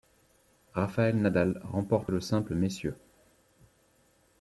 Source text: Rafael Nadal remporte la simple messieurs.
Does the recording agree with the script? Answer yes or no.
no